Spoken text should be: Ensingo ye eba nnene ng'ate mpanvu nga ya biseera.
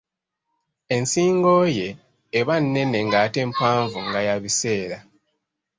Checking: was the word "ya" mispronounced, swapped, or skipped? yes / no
no